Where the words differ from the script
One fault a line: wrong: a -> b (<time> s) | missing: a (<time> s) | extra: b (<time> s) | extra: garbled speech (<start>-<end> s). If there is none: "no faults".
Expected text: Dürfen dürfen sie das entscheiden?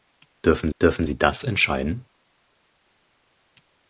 no faults